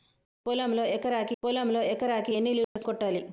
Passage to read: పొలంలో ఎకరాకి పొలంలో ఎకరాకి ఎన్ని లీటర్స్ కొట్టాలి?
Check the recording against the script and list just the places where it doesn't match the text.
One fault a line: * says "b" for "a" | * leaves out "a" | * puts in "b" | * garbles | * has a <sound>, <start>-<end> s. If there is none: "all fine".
* has a dropout, 2.6-2.8 s